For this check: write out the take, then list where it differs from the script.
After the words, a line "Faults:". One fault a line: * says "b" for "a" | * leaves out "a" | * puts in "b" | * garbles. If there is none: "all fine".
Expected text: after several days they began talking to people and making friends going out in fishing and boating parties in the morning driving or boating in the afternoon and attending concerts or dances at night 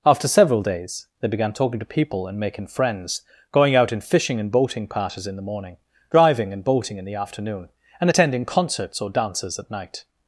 after several days they began talking to people and making friends going out in fishing and boating parties in the morning driving and boating in the afternoon and attending concerts or dances at night
Faults:
* says "and" for "or"